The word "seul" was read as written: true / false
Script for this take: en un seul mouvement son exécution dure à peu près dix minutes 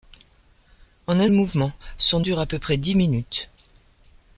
false